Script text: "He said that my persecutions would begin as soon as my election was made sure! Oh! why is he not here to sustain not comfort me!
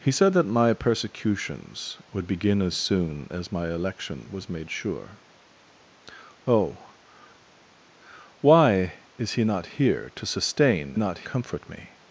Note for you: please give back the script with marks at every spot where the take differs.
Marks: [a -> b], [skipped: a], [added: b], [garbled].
"He said that my persecutions would begin as soon as my election was made sure! Oh! why is he not here to sustain not comfort me!